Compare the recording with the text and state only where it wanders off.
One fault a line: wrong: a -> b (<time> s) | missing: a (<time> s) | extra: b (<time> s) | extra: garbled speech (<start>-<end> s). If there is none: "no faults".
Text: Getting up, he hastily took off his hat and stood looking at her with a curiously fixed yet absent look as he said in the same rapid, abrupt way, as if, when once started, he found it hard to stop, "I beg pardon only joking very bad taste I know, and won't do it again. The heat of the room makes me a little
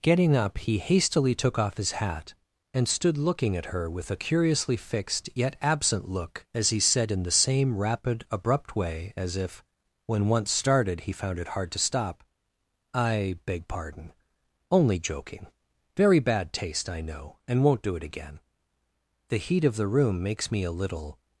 no faults